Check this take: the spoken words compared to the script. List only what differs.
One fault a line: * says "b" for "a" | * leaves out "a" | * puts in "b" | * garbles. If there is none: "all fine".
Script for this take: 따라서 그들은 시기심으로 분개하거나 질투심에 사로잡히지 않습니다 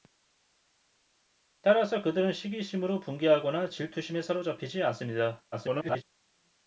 * garbles